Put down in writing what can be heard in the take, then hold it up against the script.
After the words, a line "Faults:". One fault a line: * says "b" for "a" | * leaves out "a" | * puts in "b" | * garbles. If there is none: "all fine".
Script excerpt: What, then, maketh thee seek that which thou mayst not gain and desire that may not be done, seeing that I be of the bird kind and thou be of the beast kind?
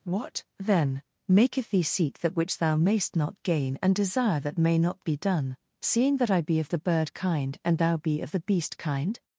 What, then, maketh thee seek that which thou mayst not gain and desire that may not be done, seeing that I be of the bird kind and thou be of the beast kind?
Faults:
all fine